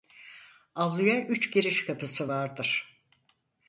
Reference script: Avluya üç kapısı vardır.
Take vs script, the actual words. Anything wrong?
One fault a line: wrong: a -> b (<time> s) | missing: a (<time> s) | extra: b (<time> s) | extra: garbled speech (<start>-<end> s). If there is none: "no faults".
extra: giriş (1.5 s)